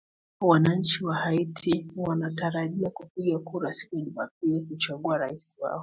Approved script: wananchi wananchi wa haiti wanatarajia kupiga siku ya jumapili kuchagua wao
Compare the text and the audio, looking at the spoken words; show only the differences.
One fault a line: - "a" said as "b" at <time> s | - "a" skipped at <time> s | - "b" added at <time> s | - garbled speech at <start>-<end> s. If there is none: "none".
- "wananchi" skipped at 1.1 s
- "kura" added at 3.4 s
- "rais" added at 5.2 s